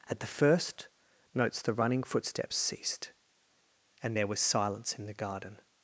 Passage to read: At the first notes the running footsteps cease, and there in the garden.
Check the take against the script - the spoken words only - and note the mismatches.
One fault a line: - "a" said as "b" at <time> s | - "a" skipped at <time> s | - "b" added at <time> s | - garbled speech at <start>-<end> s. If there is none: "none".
- "cease" said as "ceased" at 2.5 s
- "was silence" added at 4.3 s